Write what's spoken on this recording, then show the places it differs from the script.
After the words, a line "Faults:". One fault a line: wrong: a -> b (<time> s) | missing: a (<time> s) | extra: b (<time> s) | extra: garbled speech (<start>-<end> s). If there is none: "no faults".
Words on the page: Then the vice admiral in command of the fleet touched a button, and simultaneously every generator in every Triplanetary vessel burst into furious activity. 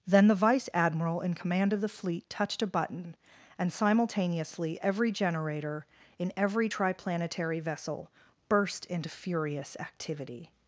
Then the vice admiral in command of the fleet touched a button, and simultaneously every generator in every Triplanetary vessel burst into furious activity.
Faults:
no faults